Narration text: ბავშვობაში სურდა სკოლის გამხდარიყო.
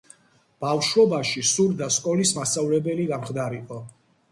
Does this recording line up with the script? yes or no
no